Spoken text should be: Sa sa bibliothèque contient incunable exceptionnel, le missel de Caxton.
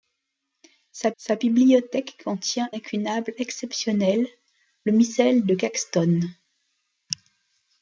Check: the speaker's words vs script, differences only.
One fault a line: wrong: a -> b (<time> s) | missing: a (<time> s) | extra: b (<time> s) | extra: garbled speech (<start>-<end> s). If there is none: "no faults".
no faults